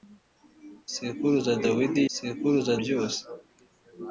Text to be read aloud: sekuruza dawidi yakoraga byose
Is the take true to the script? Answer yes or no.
no